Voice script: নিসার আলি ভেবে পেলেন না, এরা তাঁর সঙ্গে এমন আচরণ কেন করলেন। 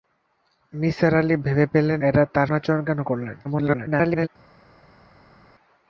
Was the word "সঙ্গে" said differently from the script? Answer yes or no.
yes